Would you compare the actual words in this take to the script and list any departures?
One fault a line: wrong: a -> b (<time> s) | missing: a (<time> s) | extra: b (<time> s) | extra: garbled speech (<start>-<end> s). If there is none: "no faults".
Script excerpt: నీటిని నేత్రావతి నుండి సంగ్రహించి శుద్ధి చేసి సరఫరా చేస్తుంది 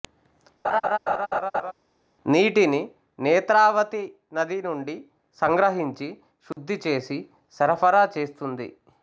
extra: నది (4.3 s)